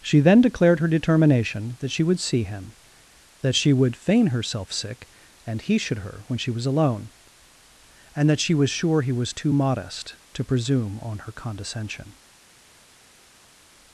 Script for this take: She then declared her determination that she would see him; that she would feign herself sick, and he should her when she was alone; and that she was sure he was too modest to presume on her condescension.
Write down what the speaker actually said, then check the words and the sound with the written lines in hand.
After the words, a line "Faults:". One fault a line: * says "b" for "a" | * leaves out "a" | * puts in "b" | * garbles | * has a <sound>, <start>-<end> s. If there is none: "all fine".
She then declared her determination that she would see him; that she would feign herself sick, and he should her when she was alone; and that she was sure he was too modest to presume on her condescension.
Faults:
all fine